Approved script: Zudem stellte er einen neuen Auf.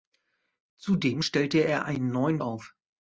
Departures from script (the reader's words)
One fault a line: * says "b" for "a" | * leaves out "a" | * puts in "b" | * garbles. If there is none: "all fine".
all fine